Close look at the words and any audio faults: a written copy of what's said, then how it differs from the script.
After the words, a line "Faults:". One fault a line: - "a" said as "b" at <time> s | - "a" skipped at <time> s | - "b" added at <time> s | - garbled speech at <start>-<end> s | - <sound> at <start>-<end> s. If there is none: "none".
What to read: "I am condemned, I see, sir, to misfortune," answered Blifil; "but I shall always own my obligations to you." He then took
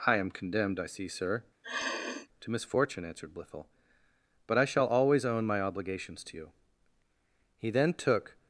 "I am condemned, I see, sir, to misfortune," answered Blifil; "but I shall always own my obligations to you." He then took
Faults:
- sniff at 1.6-2.3 s